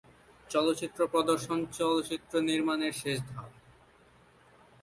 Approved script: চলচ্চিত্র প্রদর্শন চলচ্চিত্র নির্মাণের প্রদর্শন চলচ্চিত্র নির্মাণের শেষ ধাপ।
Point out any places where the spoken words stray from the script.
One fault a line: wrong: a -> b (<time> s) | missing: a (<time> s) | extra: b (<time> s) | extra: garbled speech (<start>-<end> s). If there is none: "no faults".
missing: প্রদর্শন চলচ্চিত্র নির্মাণের (2.9 s)